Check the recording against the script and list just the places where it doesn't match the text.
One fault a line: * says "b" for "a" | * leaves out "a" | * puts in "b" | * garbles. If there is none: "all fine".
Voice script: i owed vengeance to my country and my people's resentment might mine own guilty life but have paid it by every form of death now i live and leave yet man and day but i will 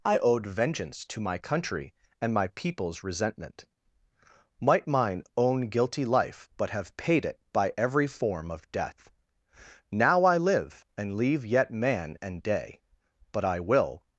all fine